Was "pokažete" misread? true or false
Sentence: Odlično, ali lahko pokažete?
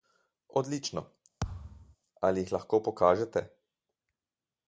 false